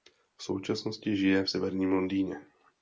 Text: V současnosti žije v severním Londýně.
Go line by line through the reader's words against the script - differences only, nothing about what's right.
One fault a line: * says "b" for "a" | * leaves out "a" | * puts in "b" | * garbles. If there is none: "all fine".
all fine